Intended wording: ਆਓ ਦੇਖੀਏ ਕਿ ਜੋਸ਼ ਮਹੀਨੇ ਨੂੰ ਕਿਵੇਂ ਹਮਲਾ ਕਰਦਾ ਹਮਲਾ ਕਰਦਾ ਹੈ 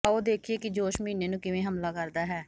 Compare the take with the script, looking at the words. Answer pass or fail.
fail